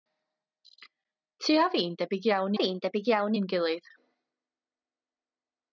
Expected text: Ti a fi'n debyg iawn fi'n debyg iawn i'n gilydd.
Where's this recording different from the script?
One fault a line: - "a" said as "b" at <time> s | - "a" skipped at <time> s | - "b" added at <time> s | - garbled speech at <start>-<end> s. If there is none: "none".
none